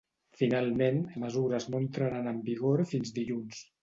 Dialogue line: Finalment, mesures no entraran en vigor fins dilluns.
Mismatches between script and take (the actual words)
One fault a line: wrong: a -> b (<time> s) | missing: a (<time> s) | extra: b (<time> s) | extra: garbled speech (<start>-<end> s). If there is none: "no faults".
no faults